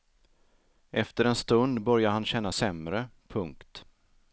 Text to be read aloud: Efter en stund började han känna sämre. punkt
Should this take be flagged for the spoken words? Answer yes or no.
no